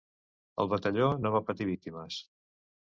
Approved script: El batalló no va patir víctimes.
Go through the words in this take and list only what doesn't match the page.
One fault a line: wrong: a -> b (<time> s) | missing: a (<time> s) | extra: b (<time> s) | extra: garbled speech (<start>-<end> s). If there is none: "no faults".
no faults